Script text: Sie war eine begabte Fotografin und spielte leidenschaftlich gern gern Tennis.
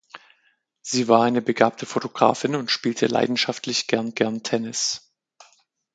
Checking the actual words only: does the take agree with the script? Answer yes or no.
yes